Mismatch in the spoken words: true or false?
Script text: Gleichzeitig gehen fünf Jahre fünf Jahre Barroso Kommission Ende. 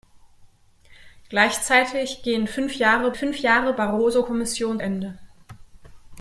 false